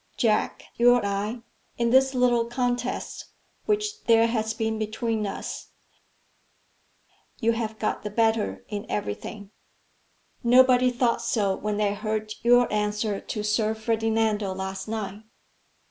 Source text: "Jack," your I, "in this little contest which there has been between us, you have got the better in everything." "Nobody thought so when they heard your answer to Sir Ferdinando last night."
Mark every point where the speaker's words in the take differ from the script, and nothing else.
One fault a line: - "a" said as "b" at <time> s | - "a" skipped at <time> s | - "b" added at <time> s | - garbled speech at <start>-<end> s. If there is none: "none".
none